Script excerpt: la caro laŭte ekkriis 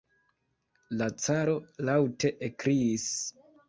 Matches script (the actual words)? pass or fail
pass